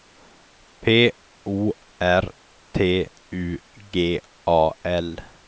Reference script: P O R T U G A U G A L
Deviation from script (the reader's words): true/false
true